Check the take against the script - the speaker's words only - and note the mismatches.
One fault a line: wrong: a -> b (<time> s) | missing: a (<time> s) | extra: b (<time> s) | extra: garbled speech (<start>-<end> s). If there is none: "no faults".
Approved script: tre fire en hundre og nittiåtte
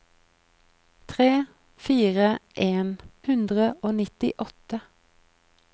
no faults